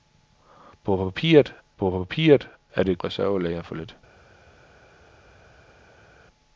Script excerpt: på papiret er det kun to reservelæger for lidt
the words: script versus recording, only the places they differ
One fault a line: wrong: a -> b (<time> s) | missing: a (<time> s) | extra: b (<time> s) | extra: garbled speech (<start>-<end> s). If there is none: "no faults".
extra: på papiret (1.8 s)
missing: kun to (3.0 s)